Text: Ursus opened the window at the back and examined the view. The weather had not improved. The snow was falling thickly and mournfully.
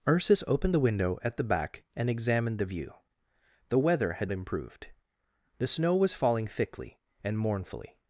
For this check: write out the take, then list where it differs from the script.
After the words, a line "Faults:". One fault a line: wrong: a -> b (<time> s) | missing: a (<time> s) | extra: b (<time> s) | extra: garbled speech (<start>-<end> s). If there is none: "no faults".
Ursus opened the window at the back and examined the view. The weather had improved. The snow was falling thickly and mournfully.
Faults:
missing: not (4.3 s)